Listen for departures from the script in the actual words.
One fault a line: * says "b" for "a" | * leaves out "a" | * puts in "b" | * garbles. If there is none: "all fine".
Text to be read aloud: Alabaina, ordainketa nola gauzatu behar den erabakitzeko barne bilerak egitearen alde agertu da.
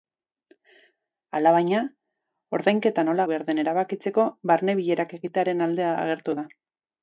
* leaves out "gauzatu"